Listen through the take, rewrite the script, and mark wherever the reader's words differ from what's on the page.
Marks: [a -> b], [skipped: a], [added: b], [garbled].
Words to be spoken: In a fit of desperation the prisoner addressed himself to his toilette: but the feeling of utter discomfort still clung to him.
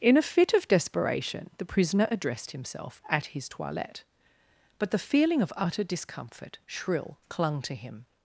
In a fit of desperation the prisoner addressed himself [to -> at] his toilette: but the feeling of utter discomfort [still -> shrill] clung to him.